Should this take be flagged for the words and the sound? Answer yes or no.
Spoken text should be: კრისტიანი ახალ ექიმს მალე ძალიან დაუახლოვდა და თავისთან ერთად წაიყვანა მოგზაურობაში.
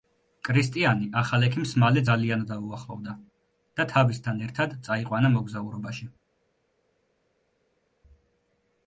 no